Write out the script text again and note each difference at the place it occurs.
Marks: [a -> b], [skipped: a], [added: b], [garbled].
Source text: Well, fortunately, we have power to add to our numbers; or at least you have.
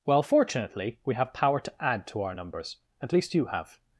Well, fortunately, we have power to add to our numbers; [skipped: or] at least you have.